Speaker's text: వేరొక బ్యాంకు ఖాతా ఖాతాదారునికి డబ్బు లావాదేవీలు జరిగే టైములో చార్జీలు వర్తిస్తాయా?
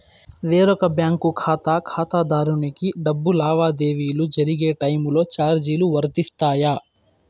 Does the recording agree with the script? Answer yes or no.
yes